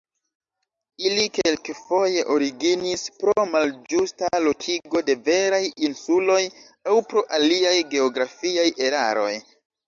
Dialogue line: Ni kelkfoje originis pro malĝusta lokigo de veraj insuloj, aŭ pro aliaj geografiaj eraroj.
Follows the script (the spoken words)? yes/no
no